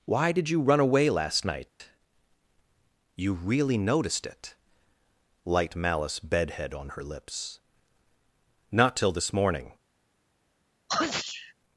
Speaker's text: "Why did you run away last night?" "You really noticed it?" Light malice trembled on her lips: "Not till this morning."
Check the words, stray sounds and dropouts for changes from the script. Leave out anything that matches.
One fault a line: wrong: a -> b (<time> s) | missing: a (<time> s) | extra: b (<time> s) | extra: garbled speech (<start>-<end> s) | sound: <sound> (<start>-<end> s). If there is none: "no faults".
sound: dropout (1.7-1.8 s)
wrong: trembled -> bedhead (6.2 s)
sound: sneeze (10.9-11.5 s)